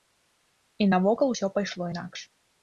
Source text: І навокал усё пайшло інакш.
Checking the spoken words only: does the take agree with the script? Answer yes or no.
yes